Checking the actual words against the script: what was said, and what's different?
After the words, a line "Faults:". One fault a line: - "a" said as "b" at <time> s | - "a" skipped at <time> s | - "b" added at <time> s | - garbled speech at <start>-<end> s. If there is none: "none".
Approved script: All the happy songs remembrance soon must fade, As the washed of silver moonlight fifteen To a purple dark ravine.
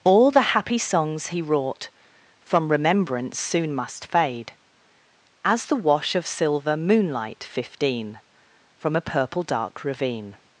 All the happy songs he wrought From remembrance soon must fade, As the wash of silver moonlight fifteen From a purple dark ravine.
Faults:
- "he wrought From" added at 1.3 s
- "washed" said as "wash" at 5.8 s
- "To" said as "From" at 8.8 s